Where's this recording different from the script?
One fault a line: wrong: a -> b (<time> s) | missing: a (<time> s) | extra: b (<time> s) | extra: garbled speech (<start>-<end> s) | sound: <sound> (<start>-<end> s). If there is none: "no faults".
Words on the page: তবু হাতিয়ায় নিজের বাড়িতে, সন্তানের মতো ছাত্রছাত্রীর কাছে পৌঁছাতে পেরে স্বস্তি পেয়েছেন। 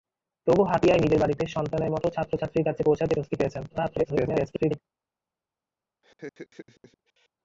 missing: পেরে (3.1 s)
extra: garbled speech (3.7-4.8 s)
sound: laugh (6.0-7.3 s)